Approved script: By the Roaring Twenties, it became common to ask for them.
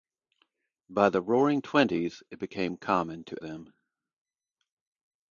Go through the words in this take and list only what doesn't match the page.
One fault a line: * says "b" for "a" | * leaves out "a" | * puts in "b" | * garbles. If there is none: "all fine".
* leaves out "ask for"